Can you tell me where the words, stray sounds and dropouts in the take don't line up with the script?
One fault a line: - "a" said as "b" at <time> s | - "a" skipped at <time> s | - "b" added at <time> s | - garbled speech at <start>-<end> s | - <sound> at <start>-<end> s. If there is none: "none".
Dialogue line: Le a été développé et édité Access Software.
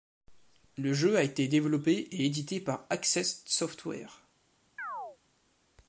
- "jeu" added at 0.9 s
- "par" added at 2.6 s
- chirp at 4.8-5.2 s